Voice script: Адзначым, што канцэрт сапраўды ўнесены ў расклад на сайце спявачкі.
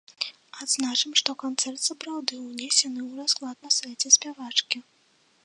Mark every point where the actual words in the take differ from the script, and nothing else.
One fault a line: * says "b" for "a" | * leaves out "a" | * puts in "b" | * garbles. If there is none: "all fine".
all fine